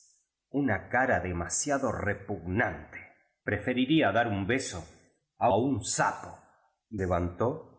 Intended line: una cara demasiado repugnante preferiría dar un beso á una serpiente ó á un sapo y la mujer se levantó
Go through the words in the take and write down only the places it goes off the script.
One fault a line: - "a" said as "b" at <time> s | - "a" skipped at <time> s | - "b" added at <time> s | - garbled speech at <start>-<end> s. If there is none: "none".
- "una serpiente ó" skipped at 5.5 s
- "la mujer se" skipped at 7.0 s